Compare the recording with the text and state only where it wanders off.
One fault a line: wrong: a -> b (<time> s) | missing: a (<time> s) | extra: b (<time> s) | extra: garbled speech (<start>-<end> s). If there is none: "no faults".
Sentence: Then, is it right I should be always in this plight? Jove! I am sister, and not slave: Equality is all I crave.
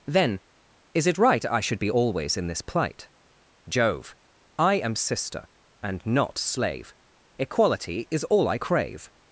no faults